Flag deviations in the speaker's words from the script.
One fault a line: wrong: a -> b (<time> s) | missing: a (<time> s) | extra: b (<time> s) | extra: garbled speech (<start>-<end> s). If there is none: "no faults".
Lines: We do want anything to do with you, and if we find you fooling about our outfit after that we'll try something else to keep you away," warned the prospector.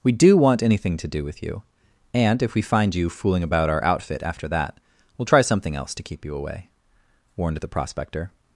no faults